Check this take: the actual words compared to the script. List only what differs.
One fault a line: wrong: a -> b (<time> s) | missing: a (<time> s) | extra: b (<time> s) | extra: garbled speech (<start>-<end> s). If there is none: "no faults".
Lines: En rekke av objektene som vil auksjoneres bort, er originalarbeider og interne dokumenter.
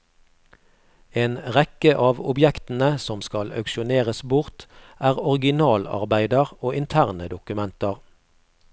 wrong: vil -> skal (3.3 s)